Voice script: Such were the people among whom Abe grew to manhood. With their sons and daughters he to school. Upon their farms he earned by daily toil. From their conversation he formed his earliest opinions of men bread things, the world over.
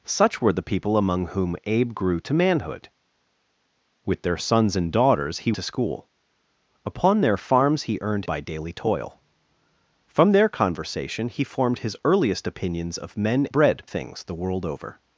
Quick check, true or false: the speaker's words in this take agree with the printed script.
true